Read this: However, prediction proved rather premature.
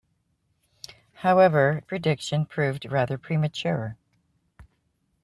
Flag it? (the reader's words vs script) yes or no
no